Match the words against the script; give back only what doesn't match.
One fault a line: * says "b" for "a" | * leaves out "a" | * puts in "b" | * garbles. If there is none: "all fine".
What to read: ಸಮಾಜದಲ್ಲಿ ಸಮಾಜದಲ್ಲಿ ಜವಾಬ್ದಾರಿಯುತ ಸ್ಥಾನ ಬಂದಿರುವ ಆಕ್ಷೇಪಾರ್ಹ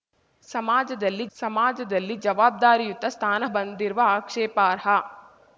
all fine